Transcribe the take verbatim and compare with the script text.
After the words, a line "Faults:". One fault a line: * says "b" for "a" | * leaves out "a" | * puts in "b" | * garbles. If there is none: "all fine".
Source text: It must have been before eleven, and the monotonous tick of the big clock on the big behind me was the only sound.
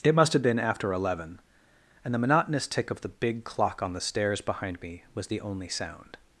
It must have been after eleven, and the monotonous tick of the big clock on the stairs behind me was the only sound.
Faults:
* says "after" for "before"
* says "stairs" for "big"